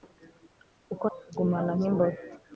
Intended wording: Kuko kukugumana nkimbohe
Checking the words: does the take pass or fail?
pass